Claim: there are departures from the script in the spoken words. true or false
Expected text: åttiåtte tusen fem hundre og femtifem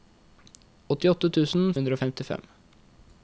true